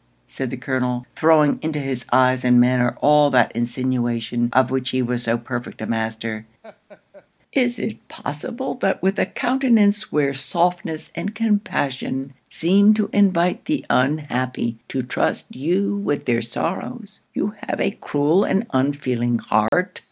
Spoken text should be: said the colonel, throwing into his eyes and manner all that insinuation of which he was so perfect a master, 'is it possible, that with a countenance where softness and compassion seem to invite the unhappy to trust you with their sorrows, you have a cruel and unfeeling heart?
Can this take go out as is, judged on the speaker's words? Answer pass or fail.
pass